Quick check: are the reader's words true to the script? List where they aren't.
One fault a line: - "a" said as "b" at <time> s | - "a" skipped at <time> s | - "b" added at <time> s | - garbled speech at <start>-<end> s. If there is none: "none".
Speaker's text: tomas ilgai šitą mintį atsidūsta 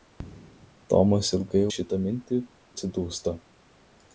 none